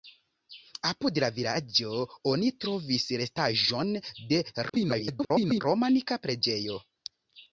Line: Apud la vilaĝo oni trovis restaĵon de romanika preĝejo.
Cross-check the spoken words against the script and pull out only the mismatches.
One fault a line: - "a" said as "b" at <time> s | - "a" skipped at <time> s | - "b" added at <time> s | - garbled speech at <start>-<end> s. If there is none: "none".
- garbled speech at 4.7-5.6 s